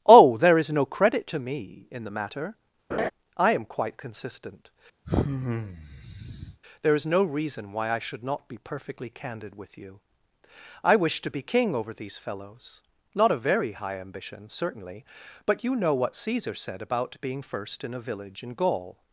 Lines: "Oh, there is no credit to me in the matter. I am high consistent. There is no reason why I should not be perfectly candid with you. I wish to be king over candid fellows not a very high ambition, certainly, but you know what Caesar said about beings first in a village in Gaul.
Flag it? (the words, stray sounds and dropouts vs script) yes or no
yes